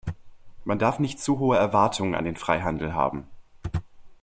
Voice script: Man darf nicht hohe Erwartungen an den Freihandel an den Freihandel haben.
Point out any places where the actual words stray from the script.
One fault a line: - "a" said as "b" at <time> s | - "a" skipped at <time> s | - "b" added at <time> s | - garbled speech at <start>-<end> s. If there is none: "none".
- "zu" added at 1.2 s
- "an den Freihandel" skipped at 3.0 s